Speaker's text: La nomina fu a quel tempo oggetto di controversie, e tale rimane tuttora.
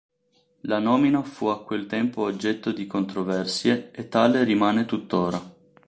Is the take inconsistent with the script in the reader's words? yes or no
no